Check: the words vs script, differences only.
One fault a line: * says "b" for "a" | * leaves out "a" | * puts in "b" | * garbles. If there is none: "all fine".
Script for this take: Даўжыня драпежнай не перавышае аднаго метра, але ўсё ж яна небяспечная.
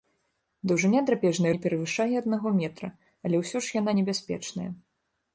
all fine